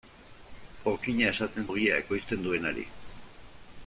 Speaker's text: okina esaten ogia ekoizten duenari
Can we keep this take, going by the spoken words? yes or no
yes